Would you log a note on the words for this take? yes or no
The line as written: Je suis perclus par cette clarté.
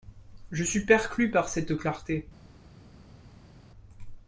no